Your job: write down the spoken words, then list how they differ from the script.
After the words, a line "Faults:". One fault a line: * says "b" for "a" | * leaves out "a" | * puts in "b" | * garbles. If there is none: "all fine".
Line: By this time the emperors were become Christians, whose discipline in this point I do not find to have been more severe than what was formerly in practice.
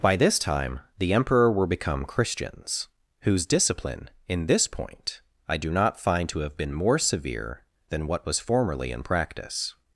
By this time the emperor were become Christians, whose discipline in this point I do not find to have been more severe than what was formerly in practice.
Faults:
* says "emperor" for "emperors"